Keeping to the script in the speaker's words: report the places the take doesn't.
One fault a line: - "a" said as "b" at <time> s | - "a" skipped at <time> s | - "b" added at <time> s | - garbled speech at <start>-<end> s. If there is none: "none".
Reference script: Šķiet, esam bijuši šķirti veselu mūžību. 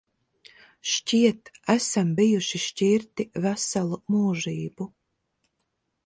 none